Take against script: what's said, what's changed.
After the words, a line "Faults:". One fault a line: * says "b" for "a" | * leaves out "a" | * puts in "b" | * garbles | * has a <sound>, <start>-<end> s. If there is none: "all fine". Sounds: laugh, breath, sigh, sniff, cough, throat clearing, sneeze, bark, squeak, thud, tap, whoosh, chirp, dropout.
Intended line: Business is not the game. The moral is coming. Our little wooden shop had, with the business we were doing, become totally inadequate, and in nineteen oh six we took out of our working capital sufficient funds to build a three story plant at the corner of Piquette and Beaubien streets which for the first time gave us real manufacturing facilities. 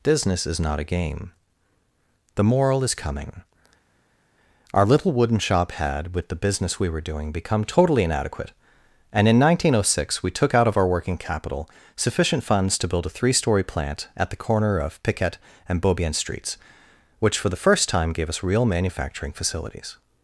Business is not a game. The moral is coming. Our little wooden shop had, with the business we were doing, become totally inadequate, and in nineteen oh six we took out of our working capital sufficient funds to build a three story plant at the corner of Piquette and Beaubien streets which for the first time gave us real manufacturing facilities.
Faults:
* says "a" for "the"